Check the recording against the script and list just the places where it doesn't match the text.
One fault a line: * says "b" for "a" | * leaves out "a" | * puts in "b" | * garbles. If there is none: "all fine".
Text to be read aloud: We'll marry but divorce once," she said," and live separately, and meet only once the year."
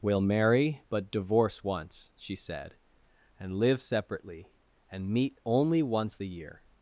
all fine